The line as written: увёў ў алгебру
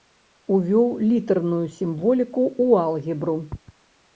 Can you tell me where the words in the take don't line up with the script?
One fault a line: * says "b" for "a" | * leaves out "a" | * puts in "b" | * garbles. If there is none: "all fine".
* puts in "літарную сімволіку"